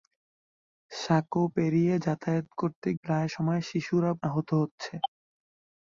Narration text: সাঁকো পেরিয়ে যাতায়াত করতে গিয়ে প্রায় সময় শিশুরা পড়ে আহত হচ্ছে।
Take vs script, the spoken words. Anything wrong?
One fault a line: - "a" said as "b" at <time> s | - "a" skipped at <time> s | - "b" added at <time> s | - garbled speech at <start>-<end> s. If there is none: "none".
- "গিয়ে" skipped at 2.9 s
- "পড়ে" skipped at 4.1 s